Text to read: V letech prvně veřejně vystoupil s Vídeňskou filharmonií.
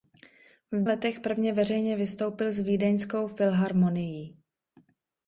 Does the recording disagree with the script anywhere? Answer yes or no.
no